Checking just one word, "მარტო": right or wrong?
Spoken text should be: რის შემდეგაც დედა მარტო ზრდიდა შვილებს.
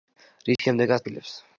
wrong